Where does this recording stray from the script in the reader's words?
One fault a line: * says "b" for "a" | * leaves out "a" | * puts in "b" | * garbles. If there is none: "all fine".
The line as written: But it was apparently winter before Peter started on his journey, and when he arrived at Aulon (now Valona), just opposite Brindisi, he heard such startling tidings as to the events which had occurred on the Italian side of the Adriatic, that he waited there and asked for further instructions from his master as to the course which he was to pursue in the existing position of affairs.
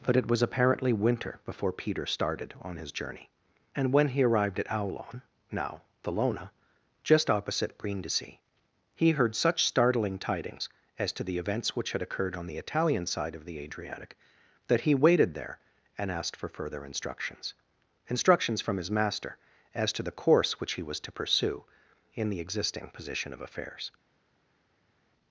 * puts in "instructions"